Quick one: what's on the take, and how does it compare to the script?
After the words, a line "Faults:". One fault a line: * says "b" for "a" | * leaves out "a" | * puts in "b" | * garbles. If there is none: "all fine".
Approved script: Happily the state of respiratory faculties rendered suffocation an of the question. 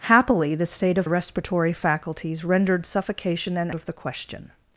Happily the state of respiratory faculties rendered suffocation an of the question.
Faults:
all fine